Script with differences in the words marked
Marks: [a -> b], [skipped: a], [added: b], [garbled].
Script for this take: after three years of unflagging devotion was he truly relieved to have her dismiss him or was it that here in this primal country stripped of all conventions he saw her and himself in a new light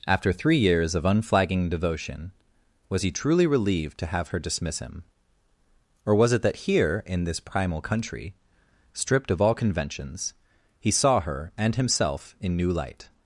after three years of unflagging devotion was he truly relieved to have her dismiss him or was it that here in this primal country stripped of all conventions he saw her and himself in [skipped: a] new light